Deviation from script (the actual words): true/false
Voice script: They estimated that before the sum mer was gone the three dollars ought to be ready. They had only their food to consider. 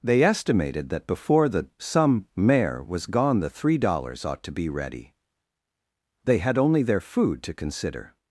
true